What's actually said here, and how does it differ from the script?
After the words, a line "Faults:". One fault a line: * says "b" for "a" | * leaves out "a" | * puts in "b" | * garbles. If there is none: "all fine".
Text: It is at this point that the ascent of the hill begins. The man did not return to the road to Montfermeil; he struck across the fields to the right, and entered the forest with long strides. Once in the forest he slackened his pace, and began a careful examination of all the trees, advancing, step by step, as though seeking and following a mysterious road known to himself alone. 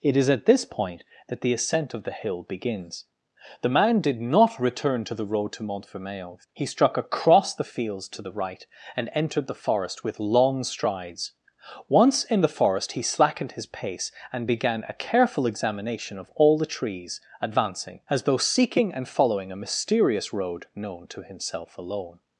It is at this point that the ascent of the hill begins. The man did not return to the road to Montfermeil; he struck across the fields to the right, and entered the forest with long strides. Once in the forest he slackened his pace, and began a careful examination of all the trees, advancing, as though seeking and following a mysterious road known to himself alone.
Faults:
* leaves out "step by step"